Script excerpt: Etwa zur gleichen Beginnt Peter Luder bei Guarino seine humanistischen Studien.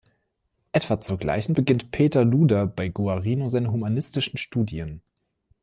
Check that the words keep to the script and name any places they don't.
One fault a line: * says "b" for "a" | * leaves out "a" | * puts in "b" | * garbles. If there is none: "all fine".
all fine